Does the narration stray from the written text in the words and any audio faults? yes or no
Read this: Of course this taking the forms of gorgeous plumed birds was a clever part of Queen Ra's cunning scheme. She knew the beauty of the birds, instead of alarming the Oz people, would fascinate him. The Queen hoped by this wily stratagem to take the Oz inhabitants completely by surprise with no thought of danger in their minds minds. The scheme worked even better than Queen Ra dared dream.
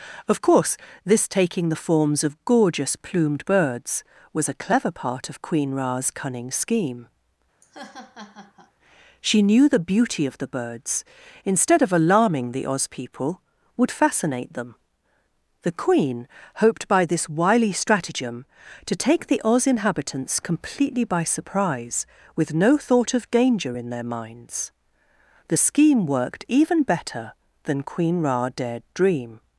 yes